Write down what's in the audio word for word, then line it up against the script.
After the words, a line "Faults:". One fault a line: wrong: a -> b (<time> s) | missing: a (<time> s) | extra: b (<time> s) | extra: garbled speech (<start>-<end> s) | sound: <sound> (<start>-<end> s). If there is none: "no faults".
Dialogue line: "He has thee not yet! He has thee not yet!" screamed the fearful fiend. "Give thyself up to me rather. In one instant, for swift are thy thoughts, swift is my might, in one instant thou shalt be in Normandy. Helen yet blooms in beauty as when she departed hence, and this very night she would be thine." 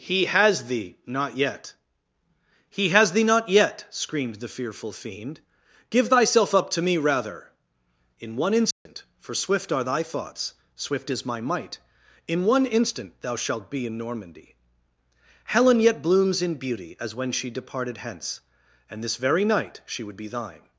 "He has thee not yet! He has thee not yet!" screamed the fearful fiend. "Give thyself up to me rather. In one instant, for swift are thy thoughts, swift is my might, in one instant thou shalt be in Normandy. Helen yet blooms in beauty as when she departed hence, and this very night she would be thine."
Faults:
sound: dropout (8.7-8.9 s)